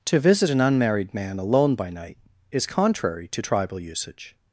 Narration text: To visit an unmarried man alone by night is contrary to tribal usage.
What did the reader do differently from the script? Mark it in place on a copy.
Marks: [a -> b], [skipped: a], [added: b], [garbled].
To visit an unmarried man alone by night is contrary to tribal usage.